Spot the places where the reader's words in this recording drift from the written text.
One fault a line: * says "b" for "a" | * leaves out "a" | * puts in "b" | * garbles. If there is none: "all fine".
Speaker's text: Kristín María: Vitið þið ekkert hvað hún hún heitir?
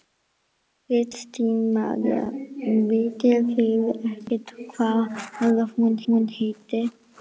all fine